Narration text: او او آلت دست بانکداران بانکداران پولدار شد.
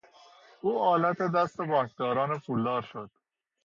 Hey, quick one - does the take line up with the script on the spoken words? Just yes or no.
no